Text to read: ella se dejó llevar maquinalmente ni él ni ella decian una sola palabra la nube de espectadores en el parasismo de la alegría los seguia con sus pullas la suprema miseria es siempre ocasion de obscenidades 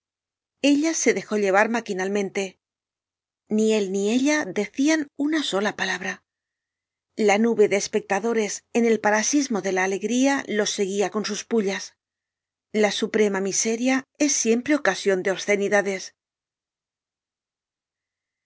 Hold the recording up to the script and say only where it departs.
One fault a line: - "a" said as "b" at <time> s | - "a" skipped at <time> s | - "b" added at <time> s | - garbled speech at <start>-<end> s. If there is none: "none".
none